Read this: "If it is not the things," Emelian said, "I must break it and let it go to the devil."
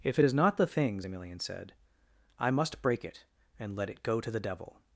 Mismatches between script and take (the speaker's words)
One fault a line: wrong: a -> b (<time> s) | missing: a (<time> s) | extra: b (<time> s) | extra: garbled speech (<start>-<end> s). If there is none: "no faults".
no faults